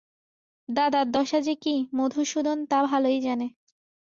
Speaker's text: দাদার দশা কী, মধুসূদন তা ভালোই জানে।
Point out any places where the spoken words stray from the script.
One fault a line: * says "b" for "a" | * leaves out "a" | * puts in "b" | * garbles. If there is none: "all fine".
* puts in "যে"